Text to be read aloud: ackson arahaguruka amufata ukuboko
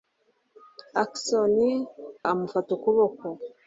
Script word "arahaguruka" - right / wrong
wrong